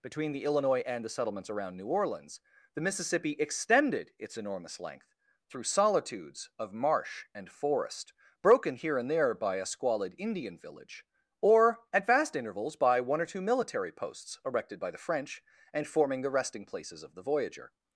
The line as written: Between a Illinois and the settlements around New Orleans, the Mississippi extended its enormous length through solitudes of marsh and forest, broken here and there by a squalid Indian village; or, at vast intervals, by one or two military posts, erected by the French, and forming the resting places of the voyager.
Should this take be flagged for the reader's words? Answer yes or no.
yes